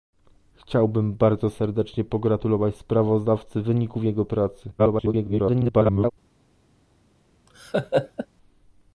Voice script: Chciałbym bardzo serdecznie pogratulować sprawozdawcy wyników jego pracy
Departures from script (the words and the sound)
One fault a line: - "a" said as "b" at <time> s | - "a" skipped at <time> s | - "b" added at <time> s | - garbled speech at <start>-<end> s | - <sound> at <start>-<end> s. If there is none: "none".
- garbled speech at 4.8-6.1 s
- laugh at 7.5-8.3 s